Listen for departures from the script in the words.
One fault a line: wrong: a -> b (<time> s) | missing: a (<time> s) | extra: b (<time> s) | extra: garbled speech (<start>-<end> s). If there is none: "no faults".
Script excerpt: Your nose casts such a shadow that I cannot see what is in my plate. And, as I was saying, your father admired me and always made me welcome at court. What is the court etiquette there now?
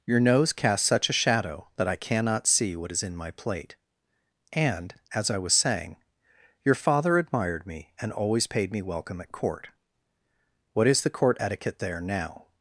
wrong: made -> paid (8.5 s)